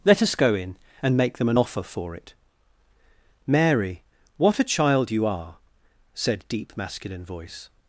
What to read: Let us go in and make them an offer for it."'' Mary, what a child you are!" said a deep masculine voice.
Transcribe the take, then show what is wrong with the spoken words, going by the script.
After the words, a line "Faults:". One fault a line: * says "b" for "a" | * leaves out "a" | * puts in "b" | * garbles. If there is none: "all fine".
Let us go in and make them an offer for it."'' Mary, what a child you are!" said deep masculine voice.
Faults:
* leaves out "a"